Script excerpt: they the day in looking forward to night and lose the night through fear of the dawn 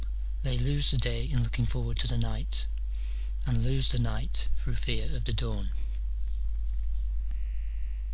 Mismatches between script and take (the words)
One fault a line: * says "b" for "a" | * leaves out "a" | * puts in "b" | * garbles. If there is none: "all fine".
* puts in "lose"
* puts in "the"